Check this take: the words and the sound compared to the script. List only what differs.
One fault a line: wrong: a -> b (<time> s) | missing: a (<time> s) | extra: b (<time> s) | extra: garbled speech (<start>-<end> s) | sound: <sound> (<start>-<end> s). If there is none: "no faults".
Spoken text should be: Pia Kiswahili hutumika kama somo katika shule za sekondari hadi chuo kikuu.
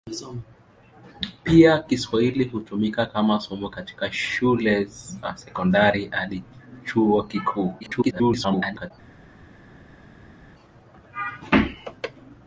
extra: garbled speech (7.8-8.9 s)